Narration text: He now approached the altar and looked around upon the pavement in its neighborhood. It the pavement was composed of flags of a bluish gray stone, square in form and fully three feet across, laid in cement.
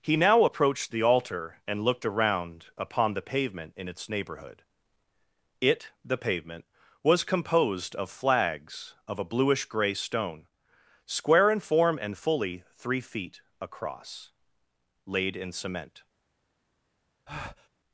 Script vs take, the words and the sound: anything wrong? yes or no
yes